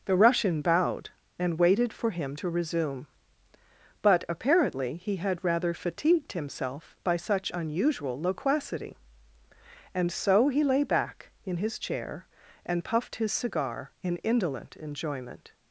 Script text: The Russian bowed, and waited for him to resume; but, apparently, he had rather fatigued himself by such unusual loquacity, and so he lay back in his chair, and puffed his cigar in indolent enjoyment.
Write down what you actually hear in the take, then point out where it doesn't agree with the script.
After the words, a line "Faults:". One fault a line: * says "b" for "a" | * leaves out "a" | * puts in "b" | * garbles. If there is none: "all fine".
The Russian bowed, and waited for him to resume; but, apparently, he had rather fatigued himself by such unusual loquacity, and so he lay back in his chair, and puffed his cigar in indolent enjoyment.
Faults:
all fine